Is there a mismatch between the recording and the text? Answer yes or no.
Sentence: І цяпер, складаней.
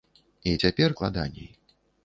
no